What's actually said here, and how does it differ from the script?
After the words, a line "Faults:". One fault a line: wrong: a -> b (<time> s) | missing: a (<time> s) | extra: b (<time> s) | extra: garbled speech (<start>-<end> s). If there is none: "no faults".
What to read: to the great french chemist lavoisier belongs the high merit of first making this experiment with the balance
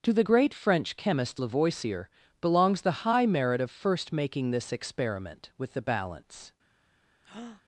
to the great french chemist lavoisier belongs the high merit of first making this experiment with the balance
Faults:
no faults